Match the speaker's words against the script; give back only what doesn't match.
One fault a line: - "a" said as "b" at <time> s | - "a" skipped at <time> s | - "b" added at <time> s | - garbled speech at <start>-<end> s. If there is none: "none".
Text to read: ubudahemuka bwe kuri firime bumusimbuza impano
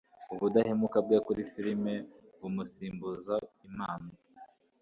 none